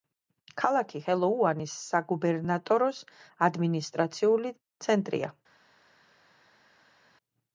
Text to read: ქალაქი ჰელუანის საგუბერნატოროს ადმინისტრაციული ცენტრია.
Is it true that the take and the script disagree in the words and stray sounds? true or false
false